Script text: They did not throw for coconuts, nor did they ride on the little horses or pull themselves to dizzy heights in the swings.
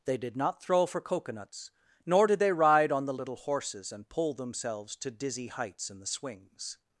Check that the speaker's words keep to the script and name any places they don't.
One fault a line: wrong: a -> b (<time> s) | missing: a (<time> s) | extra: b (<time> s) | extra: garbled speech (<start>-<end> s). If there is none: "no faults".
wrong: or -> and (3.9 s)